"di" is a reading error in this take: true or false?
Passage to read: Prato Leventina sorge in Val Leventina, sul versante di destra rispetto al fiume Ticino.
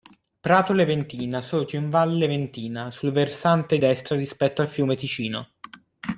true